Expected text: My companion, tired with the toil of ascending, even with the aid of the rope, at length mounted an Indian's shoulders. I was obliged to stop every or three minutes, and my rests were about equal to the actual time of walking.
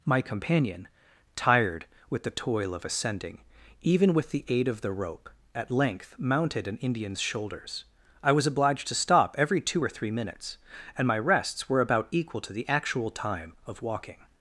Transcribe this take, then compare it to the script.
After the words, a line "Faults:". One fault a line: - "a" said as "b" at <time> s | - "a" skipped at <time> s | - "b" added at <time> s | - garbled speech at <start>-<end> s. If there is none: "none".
My companion, tired with the toil of ascending, even with the aid of the rope, at length mounted an Indian's shoulders. I was obliged to stop every two or three minutes, and my rests were about equal to the actual time of walking.
Faults:
- "two" added at 9.6 s